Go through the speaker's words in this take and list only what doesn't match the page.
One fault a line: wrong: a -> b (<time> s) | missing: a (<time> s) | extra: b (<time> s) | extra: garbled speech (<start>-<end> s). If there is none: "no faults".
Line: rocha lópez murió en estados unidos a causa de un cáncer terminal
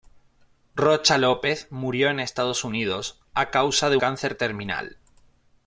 missing: un (4.0 s)